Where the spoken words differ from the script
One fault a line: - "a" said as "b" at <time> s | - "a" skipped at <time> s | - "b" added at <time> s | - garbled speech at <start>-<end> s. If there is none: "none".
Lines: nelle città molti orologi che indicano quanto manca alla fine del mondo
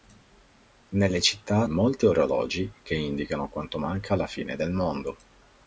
none